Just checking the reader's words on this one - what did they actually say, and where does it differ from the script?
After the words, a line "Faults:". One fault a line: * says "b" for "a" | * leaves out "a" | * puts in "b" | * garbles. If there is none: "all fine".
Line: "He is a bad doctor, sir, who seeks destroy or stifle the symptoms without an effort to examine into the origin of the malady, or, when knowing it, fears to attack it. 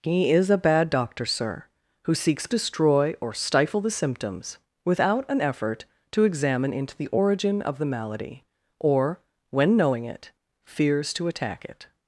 "He is a bad doctor, sir, who seeks destroy or stifle the symptoms without an effort to examine into the origin of the malady, or, when knowing it, fears to attack it.
Faults:
all fine